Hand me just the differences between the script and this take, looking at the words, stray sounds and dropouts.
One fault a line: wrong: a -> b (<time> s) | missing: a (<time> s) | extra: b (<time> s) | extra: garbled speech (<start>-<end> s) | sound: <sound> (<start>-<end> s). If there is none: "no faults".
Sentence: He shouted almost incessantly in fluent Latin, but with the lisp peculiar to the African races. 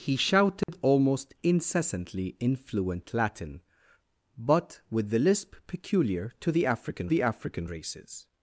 sound: dropout (0.6-0.7 s)
extra: the African (7.1 s)